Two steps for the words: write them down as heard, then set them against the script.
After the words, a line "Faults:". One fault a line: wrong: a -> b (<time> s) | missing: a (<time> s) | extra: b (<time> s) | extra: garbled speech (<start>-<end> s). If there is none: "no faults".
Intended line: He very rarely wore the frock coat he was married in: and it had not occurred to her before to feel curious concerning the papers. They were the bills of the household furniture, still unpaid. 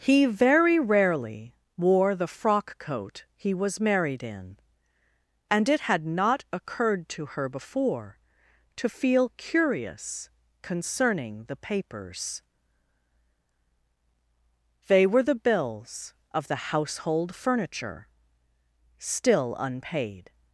He very rarely wore the frock coat he was married in: and it had not occurred to her before to feel curious concerning the papers. They were the bills of the household furniture, still unpaid.
Faults:
no faults